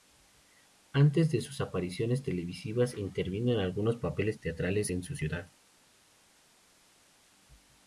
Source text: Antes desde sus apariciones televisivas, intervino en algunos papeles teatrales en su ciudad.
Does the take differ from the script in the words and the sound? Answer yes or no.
yes